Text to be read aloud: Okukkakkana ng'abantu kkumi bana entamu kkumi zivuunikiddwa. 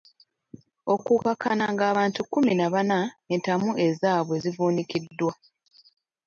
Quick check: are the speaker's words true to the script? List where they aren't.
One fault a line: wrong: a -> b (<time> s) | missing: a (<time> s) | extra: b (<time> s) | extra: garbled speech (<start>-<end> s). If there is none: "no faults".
extra: na (2.6 s)
wrong: kkumi -> ezaabwe (3.9 s)